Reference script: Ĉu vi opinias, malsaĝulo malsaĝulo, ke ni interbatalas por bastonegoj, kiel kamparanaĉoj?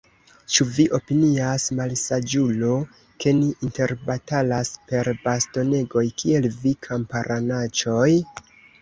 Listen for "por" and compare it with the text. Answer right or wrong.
wrong